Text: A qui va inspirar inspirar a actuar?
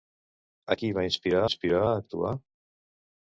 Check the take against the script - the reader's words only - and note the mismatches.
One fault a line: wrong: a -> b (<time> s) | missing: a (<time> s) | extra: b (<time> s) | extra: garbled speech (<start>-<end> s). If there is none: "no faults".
no faults